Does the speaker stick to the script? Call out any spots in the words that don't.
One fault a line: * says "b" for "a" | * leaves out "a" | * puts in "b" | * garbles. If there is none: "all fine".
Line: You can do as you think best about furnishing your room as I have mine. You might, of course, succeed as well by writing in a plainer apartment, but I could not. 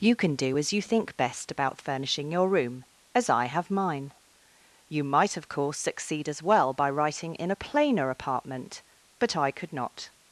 all fine